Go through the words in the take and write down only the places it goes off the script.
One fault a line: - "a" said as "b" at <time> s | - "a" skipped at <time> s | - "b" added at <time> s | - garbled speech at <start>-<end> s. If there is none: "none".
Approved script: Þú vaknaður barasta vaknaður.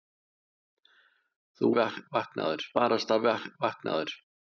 none